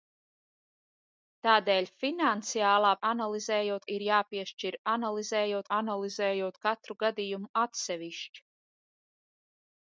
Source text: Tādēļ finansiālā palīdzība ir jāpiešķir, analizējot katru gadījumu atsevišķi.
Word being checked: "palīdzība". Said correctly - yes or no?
no